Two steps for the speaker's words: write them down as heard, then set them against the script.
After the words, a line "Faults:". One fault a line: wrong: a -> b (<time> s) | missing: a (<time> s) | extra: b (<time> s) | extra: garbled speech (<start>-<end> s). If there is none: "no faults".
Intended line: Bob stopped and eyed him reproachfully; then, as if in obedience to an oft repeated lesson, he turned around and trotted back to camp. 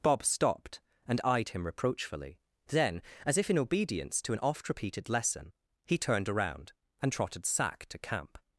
Bob stopped and eyed him reproachfully; then, as if in obedience to an oft repeated lesson, he turned around and trotted sack to camp.
Faults:
wrong: back -> sack (7.5 s)